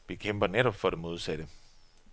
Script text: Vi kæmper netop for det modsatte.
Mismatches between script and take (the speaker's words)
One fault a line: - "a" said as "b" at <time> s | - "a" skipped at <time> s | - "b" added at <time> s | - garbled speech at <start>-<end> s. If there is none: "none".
none